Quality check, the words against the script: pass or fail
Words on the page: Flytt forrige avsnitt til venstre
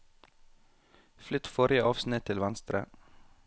pass